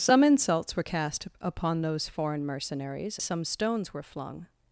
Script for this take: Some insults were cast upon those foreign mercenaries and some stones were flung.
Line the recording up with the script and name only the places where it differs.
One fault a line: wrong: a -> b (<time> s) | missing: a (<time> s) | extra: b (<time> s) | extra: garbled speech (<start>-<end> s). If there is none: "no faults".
missing: and (3.2 s)